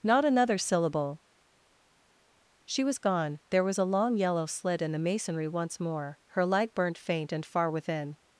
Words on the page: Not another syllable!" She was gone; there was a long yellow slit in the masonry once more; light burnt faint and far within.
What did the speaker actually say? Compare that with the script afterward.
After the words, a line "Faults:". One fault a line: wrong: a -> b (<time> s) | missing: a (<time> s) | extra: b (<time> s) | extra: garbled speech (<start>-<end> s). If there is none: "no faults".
Not another syllable!" She was gone; there was a long yellow slit in the masonry once more; her light burnt faint and far within.
Faults:
extra: her (6.3 s)